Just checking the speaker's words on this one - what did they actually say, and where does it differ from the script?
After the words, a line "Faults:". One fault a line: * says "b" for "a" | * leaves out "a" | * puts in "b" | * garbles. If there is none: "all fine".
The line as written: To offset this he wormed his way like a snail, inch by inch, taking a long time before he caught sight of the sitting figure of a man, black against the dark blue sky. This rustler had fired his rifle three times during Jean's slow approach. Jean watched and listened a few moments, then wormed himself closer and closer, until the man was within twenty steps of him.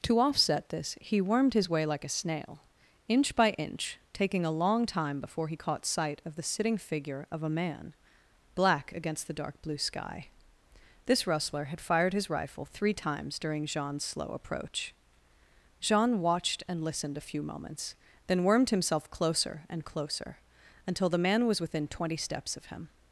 To offset this he wormed his way like a snail, inch by inch, taking a long time before he caught sight of the sitting figure of a man, black against the dark blue sky. This rustler had fired his rifle three times during Jean's slow approach. Jean watched and listened a few moments, then wormed himself closer and closer, until the man was within twenty steps of him.
Faults:
all fine